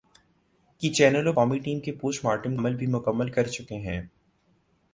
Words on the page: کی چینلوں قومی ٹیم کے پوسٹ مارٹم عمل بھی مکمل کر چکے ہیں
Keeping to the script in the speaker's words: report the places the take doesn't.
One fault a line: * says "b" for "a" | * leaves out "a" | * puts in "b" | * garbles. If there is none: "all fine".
all fine